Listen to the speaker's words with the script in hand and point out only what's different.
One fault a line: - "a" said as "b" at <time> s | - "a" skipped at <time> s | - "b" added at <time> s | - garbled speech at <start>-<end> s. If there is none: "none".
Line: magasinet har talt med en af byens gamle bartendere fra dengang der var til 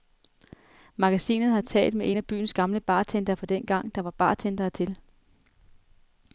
- "bartendere" added at 4.1 s